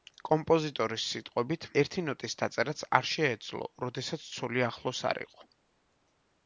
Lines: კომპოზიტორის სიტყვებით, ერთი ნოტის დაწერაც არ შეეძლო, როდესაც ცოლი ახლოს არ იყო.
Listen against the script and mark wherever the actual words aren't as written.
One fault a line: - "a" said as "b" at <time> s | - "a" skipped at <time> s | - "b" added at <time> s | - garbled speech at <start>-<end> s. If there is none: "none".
none